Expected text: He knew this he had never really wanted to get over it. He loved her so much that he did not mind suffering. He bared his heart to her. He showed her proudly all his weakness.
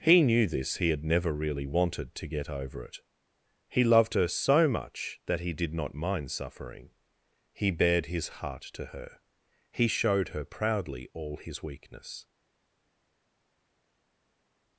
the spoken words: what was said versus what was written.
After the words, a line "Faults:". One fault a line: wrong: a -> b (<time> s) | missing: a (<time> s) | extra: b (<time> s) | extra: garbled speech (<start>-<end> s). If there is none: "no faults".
He knew this he had never really wanted to get over it. He loved her so much that he did not mind suffering. He bared his heart to her. He showed her proudly all his weakness.
Faults:
no faults